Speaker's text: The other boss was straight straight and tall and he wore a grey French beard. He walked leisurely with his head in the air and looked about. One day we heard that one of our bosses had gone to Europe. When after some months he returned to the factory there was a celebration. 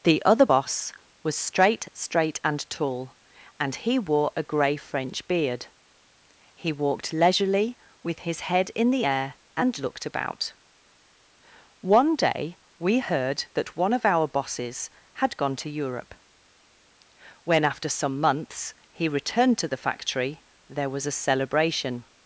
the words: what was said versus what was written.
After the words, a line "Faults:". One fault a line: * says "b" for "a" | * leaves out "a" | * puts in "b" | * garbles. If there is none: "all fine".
The other boss was straight straight and tall and he wore a grey French beard. He walked leisurely with his head in the air and looked about. One day we heard that one of our bosses had gone to Europe. When after some months he returned to the factory there was a celebration.
Faults:
all fine